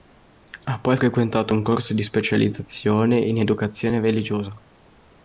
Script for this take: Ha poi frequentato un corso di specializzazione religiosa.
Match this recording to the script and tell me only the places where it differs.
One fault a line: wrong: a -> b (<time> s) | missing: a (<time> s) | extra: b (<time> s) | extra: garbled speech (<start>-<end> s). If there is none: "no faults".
extra: in educazione (3.2 s)